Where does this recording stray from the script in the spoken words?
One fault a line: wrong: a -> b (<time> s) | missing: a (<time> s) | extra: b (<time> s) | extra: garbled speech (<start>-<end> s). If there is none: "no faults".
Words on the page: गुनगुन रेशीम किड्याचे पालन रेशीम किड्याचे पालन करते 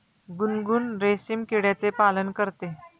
missing: रेशीम किड्याचे पालन (2.3 s)